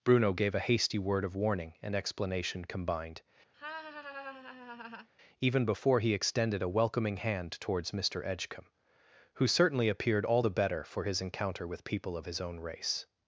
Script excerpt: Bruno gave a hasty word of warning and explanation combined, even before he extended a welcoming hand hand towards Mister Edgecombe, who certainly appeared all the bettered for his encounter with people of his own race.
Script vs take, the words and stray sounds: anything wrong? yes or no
yes